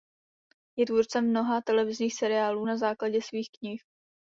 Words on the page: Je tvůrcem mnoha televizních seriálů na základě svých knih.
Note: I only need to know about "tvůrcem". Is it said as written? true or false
true